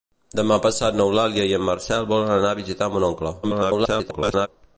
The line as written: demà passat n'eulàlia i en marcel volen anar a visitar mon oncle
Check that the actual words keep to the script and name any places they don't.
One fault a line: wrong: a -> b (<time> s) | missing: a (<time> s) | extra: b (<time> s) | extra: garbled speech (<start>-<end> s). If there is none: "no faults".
extra: garbled speech (3.4-4.5 s)